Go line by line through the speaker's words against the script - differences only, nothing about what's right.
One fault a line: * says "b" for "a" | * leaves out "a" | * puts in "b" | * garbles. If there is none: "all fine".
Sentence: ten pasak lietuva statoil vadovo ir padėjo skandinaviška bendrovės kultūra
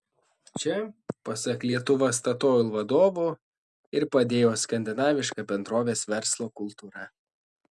* says "čia" for "ten"
* puts in "verslo"